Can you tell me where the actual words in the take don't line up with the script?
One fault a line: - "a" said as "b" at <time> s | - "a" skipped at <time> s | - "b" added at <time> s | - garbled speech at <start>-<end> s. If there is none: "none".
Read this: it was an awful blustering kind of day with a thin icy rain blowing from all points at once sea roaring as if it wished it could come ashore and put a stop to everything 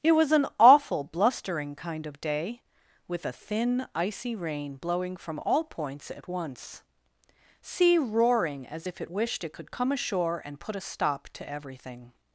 none